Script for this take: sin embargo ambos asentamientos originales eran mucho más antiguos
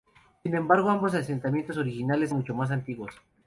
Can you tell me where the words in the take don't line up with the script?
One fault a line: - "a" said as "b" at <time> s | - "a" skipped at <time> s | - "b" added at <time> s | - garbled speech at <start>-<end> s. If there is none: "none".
- "eran" skipped at 2.3 s